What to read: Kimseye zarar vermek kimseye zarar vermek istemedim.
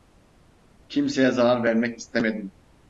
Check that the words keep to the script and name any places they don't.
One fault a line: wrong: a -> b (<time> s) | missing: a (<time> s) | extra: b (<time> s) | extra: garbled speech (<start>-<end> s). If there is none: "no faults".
missing: kimseye zarar vermek (2.0 s)